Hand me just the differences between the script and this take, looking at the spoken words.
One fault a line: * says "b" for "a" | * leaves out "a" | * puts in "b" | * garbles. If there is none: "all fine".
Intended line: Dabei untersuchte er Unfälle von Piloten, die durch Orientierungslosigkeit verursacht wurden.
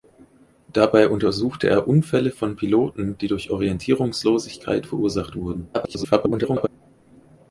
* garbles